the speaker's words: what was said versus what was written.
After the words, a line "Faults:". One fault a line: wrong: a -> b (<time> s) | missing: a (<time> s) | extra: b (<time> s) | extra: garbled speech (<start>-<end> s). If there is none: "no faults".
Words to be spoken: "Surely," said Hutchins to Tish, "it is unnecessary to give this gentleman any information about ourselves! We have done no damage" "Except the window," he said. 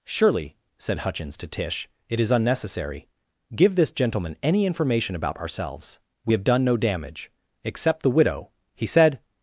"Surely," said Hutchins to Tish, "it is unnecessary give this gentleman any information about ourselves! We have done no damage" "Except the widow," he said.
Faults:
missing: to (3.1 s)
wrong: window -> widow (8.1 s)